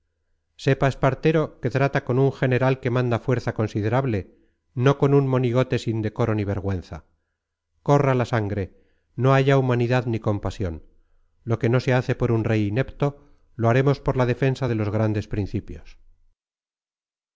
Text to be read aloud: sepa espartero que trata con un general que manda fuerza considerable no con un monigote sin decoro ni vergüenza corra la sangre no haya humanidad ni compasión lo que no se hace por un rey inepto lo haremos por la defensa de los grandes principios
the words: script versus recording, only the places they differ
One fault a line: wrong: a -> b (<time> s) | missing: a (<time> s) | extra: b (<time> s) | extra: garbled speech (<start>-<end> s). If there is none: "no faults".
no faults